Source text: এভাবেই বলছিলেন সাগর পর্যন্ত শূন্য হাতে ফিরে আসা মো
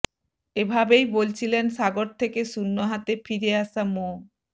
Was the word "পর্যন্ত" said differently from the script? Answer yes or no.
yes